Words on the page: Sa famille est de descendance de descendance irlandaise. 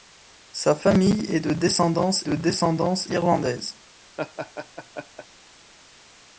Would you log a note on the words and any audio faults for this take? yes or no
yes